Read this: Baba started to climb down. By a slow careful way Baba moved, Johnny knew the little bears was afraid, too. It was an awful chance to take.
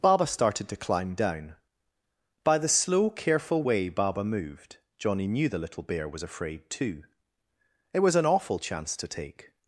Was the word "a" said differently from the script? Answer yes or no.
yes